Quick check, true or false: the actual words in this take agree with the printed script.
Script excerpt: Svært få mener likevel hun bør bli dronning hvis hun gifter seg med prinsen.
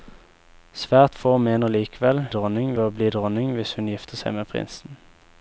false